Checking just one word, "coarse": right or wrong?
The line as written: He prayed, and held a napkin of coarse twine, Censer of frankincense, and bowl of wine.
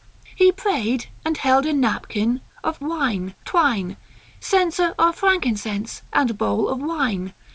wrong